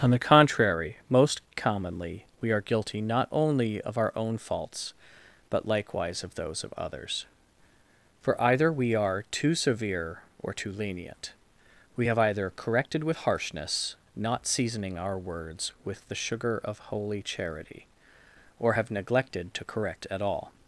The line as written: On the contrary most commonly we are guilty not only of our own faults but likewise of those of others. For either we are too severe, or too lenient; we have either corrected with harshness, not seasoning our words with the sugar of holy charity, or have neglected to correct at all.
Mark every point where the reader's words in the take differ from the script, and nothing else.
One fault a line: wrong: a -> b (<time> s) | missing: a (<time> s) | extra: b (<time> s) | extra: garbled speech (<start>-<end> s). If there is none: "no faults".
no faults